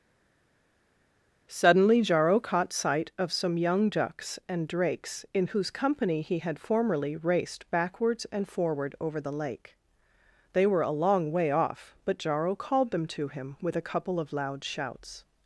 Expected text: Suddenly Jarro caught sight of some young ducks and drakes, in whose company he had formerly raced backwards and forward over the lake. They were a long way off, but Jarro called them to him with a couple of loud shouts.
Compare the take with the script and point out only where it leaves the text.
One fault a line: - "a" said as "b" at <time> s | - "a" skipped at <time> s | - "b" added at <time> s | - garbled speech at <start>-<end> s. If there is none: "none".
none